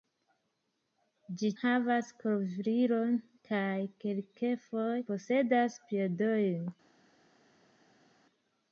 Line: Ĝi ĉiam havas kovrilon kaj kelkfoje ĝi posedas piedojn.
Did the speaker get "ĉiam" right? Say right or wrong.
wrong